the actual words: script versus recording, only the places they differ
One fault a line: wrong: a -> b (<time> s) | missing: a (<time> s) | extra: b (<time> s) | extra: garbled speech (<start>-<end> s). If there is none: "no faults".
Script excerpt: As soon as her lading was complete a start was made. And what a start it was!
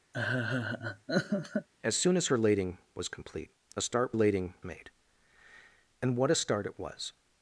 wrong: was -> lading (4.1 s)